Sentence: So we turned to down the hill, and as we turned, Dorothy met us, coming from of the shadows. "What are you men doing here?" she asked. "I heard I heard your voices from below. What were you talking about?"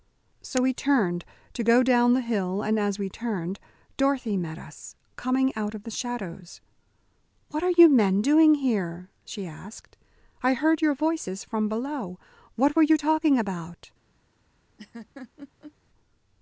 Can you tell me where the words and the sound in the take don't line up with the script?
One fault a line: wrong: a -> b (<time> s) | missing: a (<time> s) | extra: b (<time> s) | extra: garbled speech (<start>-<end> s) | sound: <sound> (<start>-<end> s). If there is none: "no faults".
extra: go (1.6 s)
wrong: from -> out (5.5 s)
missing: I heard (10.8 s)
sound: laugh (14.8-15.7 s)